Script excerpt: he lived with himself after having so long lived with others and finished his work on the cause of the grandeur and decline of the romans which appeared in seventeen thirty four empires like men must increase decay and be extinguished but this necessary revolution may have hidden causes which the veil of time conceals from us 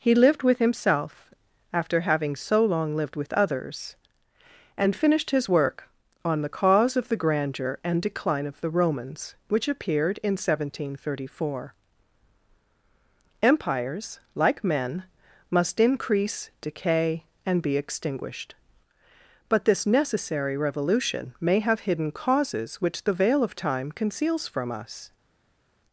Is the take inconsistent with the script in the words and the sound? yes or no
no